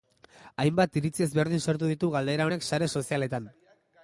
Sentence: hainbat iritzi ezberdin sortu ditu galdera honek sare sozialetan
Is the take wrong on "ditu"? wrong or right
right